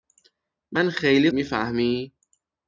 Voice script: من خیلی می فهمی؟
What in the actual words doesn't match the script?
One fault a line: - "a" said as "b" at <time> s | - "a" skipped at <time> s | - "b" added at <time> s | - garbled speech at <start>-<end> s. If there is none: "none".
none